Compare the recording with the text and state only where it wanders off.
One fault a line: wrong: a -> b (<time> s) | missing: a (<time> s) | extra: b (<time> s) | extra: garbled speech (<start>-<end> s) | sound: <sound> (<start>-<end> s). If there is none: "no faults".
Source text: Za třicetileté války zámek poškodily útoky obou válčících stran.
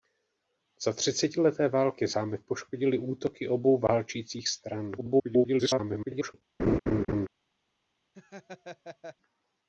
extra: garbled speech (5.0-6.3 s)
sound: laugh (6.6-7.3 s)
sound: laugh (8.1-9.2 s)